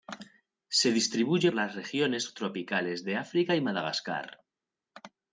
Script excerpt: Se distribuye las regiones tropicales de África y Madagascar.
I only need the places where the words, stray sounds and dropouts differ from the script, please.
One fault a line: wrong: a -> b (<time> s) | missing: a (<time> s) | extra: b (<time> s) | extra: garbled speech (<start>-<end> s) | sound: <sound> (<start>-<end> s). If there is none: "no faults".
no faults